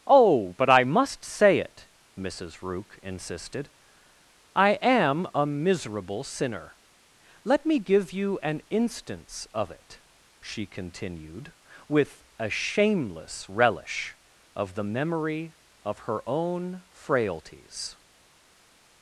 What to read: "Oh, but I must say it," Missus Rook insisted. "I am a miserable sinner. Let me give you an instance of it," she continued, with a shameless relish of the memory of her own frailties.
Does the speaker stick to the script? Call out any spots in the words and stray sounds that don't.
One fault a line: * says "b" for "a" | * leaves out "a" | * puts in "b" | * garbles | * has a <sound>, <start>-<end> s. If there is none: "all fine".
all fine